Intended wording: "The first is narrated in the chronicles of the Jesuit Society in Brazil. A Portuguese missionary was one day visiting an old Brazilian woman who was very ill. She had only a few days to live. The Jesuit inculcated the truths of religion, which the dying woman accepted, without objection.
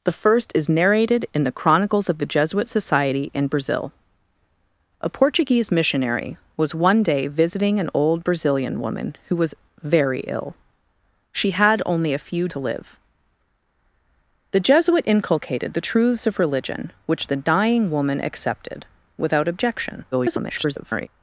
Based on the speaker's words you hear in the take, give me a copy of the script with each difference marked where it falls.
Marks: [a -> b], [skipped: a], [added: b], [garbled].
"The first is narrated in the chronicles of the Jesuit Society in Brazil. A Portuguese missionary was one day visiting an old Brazilian woman who was very ill. She had only a few [skipped: days] to live. The Jesuit inculcated the truths of religion, which the dying woman accepted, without objection. [garbled]